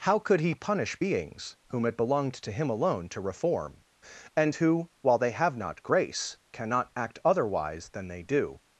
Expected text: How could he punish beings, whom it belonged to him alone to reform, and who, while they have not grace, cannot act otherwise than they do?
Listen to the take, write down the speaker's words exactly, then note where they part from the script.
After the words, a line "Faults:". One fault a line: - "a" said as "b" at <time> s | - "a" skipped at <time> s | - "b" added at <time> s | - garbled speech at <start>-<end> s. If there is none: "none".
How could he punish beings, whom it belonged to him alone to reform, and who, while they have not grace, cannot act otherwise than they do?
Faults:
none